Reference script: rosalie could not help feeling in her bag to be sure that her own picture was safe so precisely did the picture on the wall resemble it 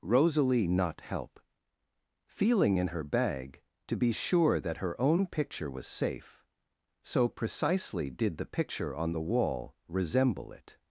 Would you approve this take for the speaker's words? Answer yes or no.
no